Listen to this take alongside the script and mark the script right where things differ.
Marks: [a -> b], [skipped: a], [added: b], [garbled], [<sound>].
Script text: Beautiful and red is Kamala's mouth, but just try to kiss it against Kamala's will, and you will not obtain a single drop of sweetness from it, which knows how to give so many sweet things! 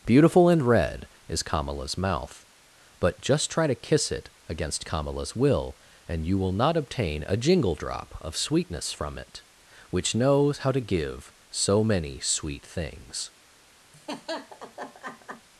Beautiful and red is Kamala's mouth, but just try to kiss it against Kamala's will, and you will not obtain a [single -> jingle] drop of sweetness from it, which knows how to give so many sweet things! [laugh]